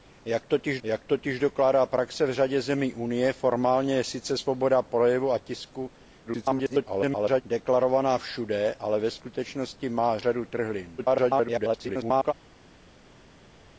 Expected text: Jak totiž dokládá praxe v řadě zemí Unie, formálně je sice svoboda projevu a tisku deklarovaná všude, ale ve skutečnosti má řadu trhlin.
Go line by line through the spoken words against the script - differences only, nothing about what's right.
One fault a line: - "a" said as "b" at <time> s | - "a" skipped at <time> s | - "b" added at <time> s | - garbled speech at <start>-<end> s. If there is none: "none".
- "jak totiž" added at 0.8 s
- garbled speech at 6.3-7.4 s
- garbled speech at 11.0-12.3 s